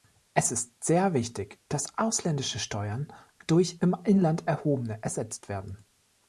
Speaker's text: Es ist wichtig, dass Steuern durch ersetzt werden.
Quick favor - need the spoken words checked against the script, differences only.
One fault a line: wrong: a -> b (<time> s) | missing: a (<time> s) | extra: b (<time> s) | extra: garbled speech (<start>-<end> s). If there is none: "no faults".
extra: sehr (0.8 s)
extra: ausländische (2.0 s)
extra: im Inland erhobene (3.8 s)